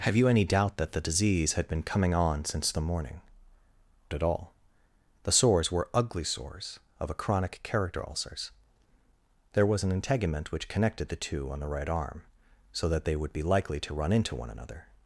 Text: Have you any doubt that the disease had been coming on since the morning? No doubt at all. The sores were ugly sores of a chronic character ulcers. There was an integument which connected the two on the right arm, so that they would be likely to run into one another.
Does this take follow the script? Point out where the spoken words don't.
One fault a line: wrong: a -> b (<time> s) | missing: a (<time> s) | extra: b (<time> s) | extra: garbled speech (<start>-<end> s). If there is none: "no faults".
missing: No doubt (3.2 s)